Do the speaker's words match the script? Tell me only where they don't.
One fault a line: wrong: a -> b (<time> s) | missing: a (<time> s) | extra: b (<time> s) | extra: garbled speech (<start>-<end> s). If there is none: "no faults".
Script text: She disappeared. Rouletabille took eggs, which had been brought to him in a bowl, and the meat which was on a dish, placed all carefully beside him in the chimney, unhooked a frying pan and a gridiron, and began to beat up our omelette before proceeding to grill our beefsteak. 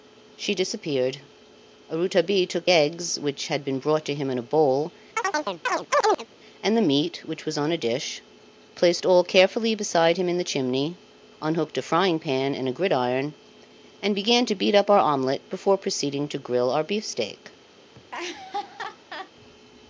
no faults